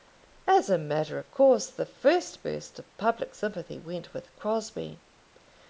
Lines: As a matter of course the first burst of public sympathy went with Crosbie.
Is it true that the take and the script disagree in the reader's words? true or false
false